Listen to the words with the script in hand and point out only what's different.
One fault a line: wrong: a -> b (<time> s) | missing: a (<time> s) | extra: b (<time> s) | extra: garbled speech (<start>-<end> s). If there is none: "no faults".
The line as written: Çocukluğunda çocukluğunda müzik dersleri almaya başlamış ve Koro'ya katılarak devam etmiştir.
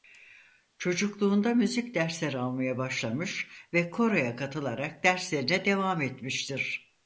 missing: çocukluğunda (1.5 s)
extra: derslerine (5.0 s)